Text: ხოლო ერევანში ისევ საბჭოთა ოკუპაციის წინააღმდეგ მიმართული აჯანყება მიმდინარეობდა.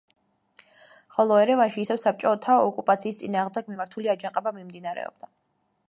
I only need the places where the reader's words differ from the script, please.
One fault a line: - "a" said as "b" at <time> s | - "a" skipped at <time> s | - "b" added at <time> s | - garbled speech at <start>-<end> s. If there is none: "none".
none